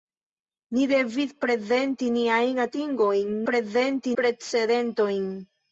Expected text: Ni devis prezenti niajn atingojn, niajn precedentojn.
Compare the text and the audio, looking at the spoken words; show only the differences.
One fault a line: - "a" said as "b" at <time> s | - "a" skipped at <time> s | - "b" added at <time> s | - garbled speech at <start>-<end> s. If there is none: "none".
- "niajn" said as "prezenti" at 3.5 s